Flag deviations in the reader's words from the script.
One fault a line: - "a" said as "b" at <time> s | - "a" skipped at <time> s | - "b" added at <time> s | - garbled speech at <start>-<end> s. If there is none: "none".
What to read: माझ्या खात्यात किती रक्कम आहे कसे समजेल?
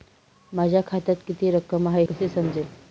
none